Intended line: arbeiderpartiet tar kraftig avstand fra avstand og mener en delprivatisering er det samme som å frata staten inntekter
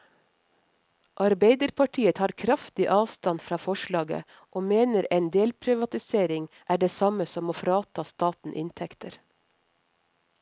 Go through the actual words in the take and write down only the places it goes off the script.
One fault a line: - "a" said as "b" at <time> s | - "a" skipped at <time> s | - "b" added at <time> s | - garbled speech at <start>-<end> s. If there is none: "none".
- "avstand" said as "forslaget" at 3.6 s